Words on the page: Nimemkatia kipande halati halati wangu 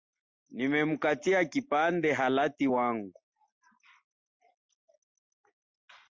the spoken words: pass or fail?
fail